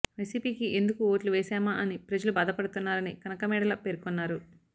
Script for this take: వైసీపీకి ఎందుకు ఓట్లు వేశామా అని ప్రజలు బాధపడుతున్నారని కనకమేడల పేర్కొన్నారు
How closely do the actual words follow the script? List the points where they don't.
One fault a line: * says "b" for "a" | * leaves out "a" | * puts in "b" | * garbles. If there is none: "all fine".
all fine